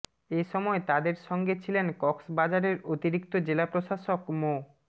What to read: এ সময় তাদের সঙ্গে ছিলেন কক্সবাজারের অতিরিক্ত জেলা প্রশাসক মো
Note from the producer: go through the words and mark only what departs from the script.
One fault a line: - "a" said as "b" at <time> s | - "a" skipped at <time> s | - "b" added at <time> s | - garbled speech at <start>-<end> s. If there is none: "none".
none